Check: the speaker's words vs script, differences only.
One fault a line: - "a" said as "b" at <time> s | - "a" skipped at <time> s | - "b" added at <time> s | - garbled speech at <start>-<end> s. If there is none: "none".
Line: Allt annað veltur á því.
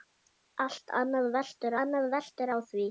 - "annað veltur" added at 1.8 s